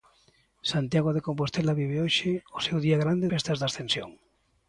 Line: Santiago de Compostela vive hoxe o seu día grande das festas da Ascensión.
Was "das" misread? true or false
true